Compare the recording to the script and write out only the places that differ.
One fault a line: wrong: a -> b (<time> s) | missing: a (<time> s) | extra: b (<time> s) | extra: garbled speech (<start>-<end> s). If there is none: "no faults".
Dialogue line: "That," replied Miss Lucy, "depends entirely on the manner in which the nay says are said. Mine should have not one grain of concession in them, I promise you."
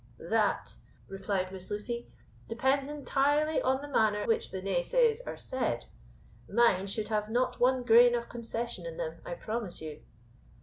missing: in (4.2 s)